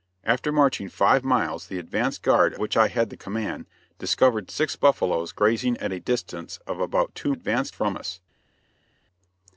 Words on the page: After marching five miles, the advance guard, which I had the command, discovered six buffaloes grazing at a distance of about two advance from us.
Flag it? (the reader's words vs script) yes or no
no